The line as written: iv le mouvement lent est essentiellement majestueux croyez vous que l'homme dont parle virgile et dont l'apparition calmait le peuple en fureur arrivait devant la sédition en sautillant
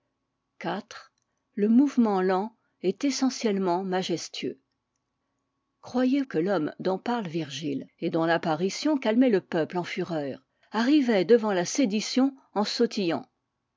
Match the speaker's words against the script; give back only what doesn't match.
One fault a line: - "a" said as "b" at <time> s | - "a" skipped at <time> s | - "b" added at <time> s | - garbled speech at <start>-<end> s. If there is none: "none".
- "vous" skipped at 6.2 s